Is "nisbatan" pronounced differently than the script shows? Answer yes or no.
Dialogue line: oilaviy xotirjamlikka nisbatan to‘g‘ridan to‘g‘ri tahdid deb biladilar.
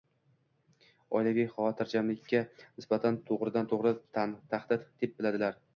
no